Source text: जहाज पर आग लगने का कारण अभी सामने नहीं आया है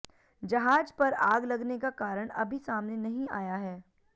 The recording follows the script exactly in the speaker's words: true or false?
true